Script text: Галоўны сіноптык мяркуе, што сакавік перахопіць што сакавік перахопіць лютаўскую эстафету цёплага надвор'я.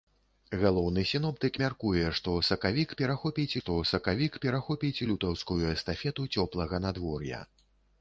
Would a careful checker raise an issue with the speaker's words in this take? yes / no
no